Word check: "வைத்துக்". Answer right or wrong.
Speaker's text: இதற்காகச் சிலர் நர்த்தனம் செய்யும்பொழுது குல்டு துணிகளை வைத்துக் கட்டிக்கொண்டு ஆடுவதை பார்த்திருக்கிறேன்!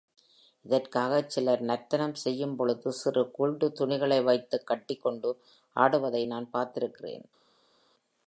right